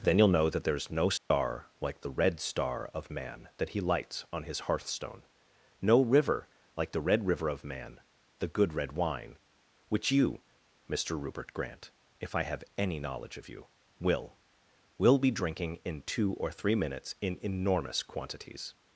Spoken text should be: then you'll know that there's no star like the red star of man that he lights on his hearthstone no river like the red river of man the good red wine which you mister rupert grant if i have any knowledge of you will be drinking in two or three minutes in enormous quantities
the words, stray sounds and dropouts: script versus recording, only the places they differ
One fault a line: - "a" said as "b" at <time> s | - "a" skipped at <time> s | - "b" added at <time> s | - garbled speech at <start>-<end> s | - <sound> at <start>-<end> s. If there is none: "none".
- dropout at 1.2-1.3 s
- "will" added at 15.0 s